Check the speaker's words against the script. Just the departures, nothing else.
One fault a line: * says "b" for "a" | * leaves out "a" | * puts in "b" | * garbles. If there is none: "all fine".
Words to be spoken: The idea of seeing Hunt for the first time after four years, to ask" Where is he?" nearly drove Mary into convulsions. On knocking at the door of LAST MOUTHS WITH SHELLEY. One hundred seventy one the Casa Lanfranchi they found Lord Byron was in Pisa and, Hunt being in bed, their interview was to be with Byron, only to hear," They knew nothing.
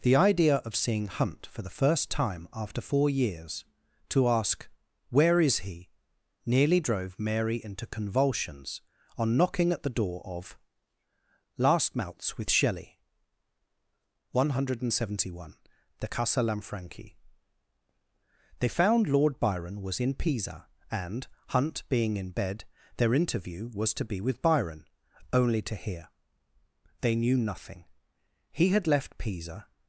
* puts in "He had left Pisa"